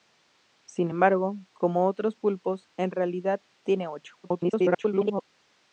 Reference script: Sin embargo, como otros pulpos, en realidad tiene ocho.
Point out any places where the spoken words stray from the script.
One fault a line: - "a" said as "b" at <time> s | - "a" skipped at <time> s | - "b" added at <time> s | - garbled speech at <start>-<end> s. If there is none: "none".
- garbled speech at 4.2-5.2 s